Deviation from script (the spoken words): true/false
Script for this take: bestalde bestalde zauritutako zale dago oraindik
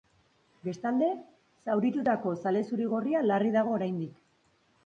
true